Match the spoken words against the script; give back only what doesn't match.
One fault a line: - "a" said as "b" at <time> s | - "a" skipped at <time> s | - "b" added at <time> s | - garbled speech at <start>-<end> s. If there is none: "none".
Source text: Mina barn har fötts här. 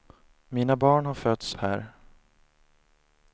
none